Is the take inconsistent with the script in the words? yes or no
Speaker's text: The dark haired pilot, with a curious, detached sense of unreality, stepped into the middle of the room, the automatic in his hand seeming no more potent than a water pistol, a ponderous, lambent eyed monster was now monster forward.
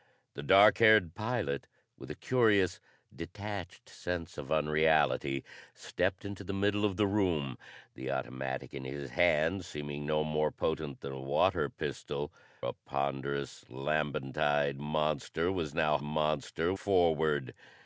no